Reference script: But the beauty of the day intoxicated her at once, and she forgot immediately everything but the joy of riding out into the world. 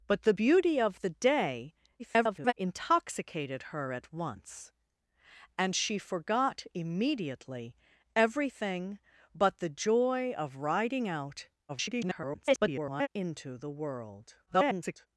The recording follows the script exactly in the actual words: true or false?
false